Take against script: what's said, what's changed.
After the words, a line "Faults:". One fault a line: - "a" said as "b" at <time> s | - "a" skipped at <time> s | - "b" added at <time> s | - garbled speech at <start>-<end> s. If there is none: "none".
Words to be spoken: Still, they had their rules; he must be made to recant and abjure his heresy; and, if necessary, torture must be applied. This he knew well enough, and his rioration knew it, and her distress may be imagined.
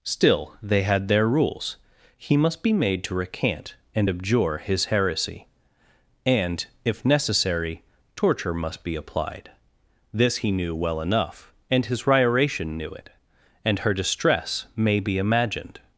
Still, they had their rules; he must be made to recant and abjure his heresy; and, if necessary, torture must be applied. This he knew well enough, and his rioration knew it, and her distress may be imagined.
Faults:
none